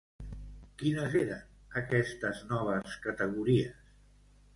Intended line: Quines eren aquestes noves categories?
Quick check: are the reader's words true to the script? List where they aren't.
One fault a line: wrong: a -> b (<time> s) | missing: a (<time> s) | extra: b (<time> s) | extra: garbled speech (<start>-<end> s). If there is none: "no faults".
no faults